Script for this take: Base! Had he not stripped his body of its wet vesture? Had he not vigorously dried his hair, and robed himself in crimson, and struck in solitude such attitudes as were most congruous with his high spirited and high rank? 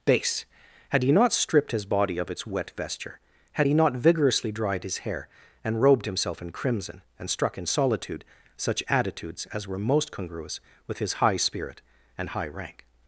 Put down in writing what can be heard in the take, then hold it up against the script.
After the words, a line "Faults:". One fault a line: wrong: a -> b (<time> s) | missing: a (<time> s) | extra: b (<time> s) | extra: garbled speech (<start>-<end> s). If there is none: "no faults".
Base! Had he not stripped his body of its wet vesture? Had he not vigorously dried his hair, and robed himself in crimson, and struck in solitude such attitudes as were most congruous with his high spirit and high rank?
Faults:
wrong: spirited -> spirit (11.4 s)